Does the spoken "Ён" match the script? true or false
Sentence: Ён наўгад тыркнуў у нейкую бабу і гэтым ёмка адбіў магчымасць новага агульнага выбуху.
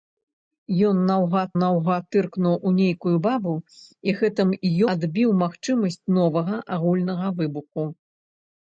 true